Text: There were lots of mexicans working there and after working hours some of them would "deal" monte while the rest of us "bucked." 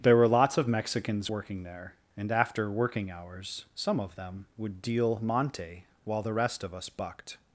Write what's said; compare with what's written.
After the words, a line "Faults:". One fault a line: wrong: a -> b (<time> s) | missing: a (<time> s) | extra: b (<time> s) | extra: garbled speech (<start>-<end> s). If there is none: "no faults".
There were lots of mexicans working there and after working hours some of them would "deal" monte while the rest of us "bucked."
Faults:
no faults